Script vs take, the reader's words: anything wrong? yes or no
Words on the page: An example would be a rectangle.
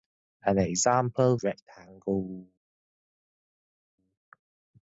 yes